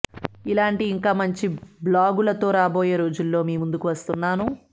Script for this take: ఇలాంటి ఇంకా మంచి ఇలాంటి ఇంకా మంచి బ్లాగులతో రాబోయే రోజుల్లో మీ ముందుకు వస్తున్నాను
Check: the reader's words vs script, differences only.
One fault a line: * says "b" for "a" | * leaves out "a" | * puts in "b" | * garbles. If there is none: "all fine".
* leaves out "ఇలాంటి ఇంకా మంచి"